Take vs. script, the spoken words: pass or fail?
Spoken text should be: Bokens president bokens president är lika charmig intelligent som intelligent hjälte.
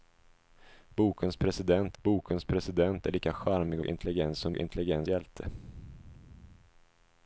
pass